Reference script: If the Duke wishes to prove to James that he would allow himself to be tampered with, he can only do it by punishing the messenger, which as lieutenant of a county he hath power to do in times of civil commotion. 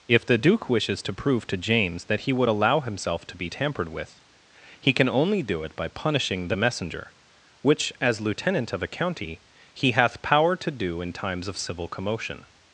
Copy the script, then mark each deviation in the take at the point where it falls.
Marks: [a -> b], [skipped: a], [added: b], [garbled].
If the Duke wishes to prove to James that he would allow himself to be tampered with, he can only do it by punishing the messenger, which as lieutenant of a county he hath power to do in times of civil commotion.